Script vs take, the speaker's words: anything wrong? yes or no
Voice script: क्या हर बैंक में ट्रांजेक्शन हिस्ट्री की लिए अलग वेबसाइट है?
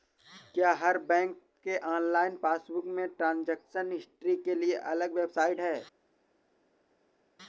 yes